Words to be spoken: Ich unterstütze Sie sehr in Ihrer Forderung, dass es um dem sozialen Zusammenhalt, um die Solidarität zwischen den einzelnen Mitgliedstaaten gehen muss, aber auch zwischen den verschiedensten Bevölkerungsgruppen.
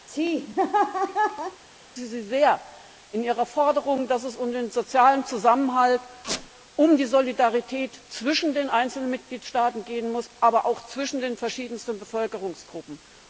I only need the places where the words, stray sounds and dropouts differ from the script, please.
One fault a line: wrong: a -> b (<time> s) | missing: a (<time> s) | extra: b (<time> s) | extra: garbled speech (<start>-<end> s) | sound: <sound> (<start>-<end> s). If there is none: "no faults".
sound: laugh (0.1-1.6 s)
wrong: dem -> den (4.5 s)
sound: squeak (6.2-6.5 s)